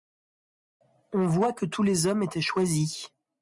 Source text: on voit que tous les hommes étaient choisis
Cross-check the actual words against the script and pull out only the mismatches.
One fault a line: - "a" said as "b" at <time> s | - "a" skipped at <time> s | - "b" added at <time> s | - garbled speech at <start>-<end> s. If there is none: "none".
none